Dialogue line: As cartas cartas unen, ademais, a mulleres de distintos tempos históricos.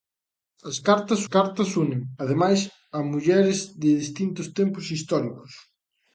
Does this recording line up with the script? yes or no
yes